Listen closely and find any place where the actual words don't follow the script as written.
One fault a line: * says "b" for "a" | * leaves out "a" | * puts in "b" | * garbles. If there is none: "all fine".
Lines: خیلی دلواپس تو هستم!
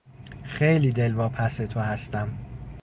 all fine